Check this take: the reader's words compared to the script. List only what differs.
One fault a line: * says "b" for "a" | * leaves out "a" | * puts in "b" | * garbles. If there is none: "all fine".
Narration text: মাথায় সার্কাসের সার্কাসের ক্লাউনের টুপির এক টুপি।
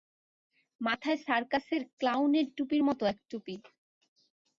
* leaves out "সার্কাসের"
* puts in "মতো"